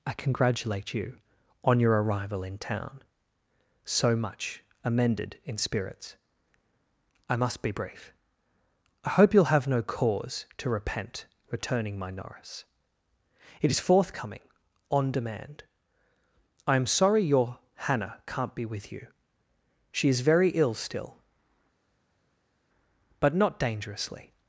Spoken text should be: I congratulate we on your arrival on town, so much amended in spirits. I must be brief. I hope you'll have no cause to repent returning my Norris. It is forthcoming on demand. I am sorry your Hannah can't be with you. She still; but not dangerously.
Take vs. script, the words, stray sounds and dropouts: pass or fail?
fail